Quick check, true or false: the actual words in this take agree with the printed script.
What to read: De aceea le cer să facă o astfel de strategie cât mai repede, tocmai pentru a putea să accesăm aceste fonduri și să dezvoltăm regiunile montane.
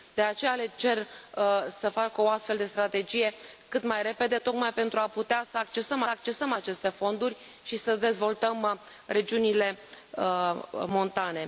false